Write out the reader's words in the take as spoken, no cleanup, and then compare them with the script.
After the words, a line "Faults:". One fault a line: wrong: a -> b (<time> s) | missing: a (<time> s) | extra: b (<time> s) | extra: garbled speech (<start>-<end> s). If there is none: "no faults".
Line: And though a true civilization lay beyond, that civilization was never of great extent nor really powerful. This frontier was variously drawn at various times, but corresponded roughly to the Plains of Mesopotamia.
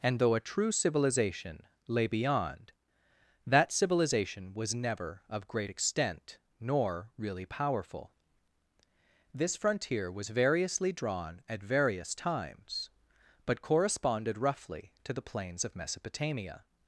And though a true civilization lay beyond, that civilization was never of great extent nor really powerful. This frontier was variously drawn at various times, but corresponded roughly to the Plains of Mesopotamia.
Faults:
no faults